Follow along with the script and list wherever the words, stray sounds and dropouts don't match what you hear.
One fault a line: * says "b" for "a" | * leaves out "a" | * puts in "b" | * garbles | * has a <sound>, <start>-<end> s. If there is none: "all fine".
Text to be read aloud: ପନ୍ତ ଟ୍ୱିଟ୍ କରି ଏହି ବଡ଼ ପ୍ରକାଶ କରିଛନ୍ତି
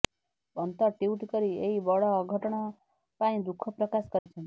* puts in "ଅଘଟଣ ପାଇଁ ଦୁଃଖ"
* has a dropout, 4.2-4.3 s